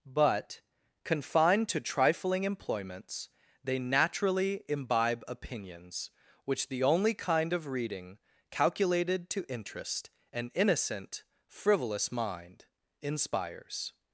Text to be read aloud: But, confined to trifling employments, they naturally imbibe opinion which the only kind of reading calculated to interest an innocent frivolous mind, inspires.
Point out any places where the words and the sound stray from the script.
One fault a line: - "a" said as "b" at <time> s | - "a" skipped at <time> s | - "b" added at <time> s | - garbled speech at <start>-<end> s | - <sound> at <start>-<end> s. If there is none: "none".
- "opinion" said as "opinions" at 5.3 s